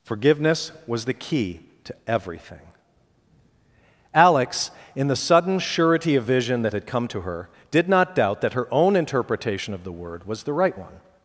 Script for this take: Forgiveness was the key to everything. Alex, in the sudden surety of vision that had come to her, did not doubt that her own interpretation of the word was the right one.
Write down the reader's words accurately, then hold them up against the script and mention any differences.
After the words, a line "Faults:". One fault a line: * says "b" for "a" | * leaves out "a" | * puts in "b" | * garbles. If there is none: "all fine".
Forgiveness was the key to everything. Alex, in the sudden surety of vision that had come to her, did not doubt that her own interpretation of the word was the right one.
Faults:
all fine